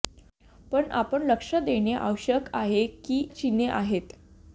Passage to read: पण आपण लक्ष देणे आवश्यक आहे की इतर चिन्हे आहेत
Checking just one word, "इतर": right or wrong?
wrong